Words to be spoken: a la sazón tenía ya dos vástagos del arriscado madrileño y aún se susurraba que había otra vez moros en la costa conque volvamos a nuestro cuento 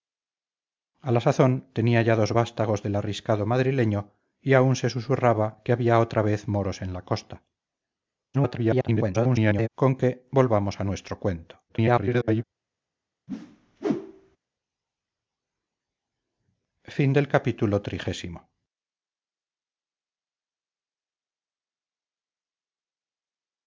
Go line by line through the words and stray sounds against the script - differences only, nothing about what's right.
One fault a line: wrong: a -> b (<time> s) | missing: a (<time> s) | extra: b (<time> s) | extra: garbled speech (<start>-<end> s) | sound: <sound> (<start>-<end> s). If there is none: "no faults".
extra: garbled speech (8.3-9.7 s)
extra: garbled speech (11.7-12.4 s)
sound: whoosh (13.3-14.4 s)